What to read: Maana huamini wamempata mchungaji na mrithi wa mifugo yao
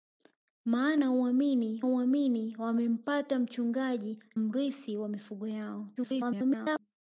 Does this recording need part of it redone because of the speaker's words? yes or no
yes